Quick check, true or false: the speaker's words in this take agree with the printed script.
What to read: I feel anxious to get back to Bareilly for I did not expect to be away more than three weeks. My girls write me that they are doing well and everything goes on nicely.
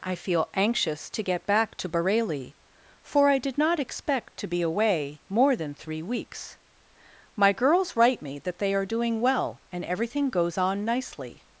true